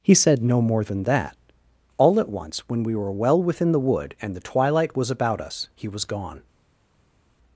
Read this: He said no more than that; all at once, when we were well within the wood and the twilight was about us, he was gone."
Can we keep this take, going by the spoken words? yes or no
yes